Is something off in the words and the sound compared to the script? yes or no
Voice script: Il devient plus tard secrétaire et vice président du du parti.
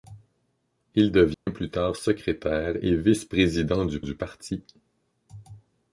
yes